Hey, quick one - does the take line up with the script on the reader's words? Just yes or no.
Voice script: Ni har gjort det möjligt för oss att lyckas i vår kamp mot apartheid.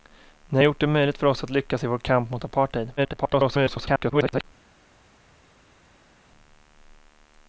no